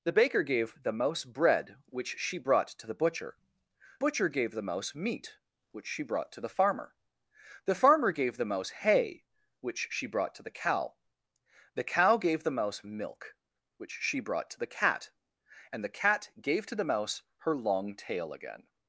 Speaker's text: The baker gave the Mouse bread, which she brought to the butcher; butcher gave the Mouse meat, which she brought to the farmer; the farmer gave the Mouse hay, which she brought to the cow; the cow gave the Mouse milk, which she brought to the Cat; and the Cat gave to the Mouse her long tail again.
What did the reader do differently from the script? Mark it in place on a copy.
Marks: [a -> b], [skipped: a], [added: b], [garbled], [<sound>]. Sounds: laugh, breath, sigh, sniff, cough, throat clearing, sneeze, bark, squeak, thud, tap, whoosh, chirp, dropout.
The baker gave the Mouse bread, which she brought to the butcher; butcher gave the Mouse meat, which she brought to the farmer; the farmer gave the Mouse hay, which she brought to the cow; the cow gave the Mouse milk, which she brought to the Cat; and the Cat gave to the Mouse her long tail again.